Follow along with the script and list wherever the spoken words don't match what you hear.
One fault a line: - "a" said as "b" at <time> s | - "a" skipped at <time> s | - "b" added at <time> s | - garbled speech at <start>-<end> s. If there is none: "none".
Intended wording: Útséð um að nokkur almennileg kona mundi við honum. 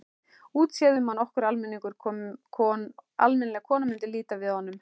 - "líta" added at 4.1 s